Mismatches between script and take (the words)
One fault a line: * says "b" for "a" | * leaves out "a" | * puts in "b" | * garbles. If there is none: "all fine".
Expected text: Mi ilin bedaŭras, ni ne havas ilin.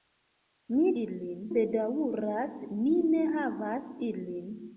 all fine